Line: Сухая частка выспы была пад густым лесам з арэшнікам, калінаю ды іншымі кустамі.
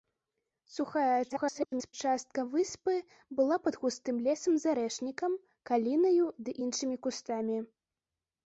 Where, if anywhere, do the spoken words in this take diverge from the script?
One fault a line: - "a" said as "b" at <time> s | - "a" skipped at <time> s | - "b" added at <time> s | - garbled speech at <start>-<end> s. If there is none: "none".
- garbled speech at 1.3-1.9 s